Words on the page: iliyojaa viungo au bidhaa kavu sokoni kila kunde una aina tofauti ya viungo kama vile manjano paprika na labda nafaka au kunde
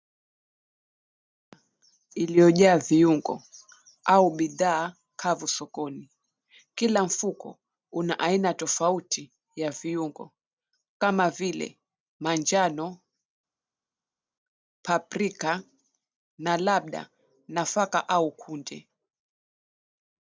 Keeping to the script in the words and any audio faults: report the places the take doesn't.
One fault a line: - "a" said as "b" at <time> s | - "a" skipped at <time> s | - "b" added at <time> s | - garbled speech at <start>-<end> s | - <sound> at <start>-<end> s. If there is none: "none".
- "kunde" said as "mfuko" at 7.0 s